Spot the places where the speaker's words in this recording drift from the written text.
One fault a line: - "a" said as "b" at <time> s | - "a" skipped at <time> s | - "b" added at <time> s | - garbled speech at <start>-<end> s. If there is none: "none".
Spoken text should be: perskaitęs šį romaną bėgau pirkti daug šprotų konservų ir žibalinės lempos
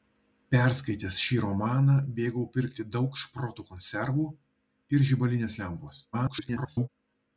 - garbled speech at 6.1-6.9 s